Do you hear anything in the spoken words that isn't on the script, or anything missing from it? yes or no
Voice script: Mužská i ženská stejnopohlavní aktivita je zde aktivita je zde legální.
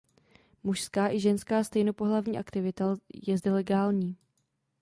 yes